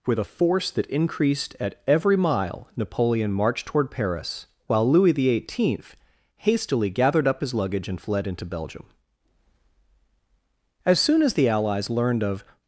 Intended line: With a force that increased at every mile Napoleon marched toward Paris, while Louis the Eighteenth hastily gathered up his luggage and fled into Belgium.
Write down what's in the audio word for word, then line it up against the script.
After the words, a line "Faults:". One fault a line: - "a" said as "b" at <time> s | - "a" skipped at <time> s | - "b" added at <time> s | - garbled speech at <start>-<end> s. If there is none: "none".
With a force that increased at every mile Napoleon marched toward Paris, while Louis the Eighteenth hastily gathered up his luggage and fled into Belgium. As soon as the Allies learned of
Faults:
- "As soon as the Allies learned of" added at 10.8 s